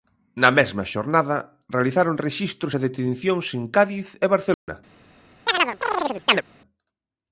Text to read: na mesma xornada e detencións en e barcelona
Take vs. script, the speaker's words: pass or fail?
fail